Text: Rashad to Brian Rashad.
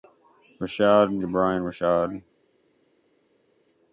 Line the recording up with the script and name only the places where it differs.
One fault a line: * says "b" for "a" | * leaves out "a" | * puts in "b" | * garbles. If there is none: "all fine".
all fine